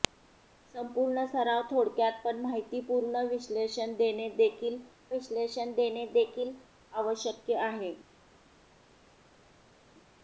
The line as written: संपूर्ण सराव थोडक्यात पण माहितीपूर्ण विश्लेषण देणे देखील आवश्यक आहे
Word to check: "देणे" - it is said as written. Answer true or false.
true